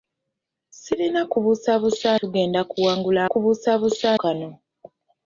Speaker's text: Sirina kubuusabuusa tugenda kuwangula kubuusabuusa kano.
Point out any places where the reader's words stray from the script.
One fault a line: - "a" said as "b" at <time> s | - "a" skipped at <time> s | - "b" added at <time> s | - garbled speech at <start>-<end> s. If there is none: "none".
none